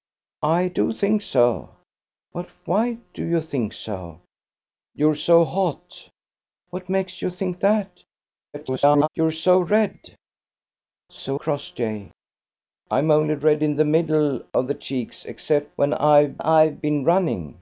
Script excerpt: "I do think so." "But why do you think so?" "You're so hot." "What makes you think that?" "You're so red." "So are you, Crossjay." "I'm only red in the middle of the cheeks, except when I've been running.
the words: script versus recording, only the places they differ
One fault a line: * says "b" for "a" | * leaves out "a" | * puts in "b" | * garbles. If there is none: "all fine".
* garbles
* leaves out "are you"
* puts in "I've"